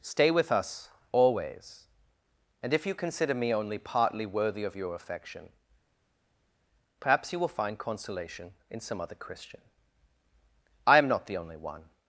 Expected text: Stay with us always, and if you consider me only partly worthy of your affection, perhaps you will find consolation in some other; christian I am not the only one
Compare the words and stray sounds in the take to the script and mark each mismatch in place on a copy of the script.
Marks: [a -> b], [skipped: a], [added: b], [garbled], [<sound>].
Stay with us always, and if you consider me only partly worthy of your affection, perhaps you will find consolation in some other; christian I am not the only one